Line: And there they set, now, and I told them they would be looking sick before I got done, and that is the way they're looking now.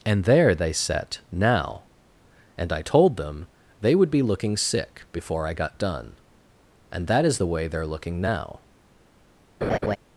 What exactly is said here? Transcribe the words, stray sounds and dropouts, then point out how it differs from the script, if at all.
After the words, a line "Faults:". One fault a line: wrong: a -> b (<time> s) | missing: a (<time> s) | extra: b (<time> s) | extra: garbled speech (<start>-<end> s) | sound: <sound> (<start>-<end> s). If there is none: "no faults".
And there they set, now, and I told them they would be looking sick before I got done, and that is the way they're looking now.
Faults:
sound: laugh (9.6-10.0 s)